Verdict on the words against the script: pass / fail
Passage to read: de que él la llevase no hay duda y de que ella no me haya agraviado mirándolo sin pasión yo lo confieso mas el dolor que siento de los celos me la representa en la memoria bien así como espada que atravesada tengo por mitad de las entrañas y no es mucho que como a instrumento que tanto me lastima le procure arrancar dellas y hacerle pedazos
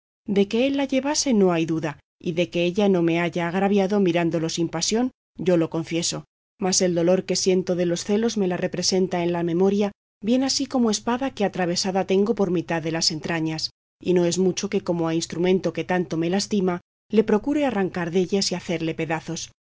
pass